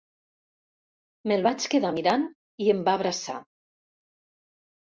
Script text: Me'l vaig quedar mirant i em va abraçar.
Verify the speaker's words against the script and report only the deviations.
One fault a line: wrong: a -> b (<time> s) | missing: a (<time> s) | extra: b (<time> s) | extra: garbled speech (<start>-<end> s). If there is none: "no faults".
no faults